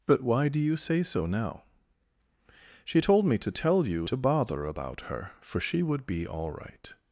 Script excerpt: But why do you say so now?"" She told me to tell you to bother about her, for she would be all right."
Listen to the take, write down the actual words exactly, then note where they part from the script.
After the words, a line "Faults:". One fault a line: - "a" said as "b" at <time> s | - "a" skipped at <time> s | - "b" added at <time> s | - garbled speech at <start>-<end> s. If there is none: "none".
But why do you say so now?"" She told me to tell you to bother about her, for she would be all right."
Faults:
none